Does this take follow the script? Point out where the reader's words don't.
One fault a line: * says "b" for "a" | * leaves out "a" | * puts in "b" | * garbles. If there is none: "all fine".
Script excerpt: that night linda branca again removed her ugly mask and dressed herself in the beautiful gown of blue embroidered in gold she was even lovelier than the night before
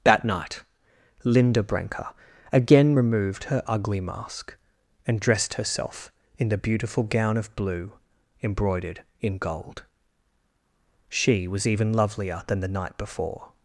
all fine